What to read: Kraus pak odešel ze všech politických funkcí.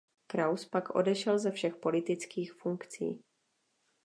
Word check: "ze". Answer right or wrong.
right